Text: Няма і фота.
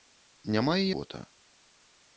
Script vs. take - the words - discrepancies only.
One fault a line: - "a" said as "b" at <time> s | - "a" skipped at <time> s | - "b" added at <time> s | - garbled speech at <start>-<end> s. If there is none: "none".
none